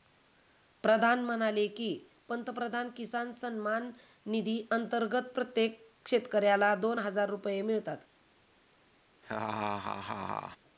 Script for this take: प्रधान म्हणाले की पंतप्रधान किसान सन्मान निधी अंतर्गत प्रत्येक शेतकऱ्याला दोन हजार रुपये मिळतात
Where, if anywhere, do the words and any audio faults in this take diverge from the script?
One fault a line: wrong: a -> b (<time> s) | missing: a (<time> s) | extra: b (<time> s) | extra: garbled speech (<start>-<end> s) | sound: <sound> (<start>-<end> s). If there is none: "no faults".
sound: laugh (9.2-10.6 s)